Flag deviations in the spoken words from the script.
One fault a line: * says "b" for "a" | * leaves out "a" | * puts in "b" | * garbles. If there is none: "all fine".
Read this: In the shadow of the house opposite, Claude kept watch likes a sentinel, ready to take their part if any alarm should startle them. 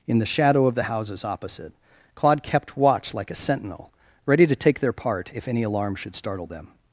* says "houses" for "house"
* says "like" for "likes"